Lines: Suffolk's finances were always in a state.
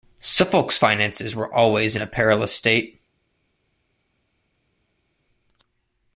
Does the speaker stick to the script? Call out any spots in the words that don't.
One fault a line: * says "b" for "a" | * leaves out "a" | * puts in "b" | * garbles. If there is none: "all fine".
* puts in "perilous"